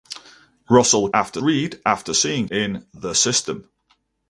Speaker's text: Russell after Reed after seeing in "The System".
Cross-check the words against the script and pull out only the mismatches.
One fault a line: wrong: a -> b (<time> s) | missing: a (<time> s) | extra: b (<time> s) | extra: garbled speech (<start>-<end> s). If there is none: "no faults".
no faults